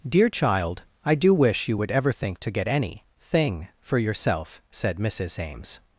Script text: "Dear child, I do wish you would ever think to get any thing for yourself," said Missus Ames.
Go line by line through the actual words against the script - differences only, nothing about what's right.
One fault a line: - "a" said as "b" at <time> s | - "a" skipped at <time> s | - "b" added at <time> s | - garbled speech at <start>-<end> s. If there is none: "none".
none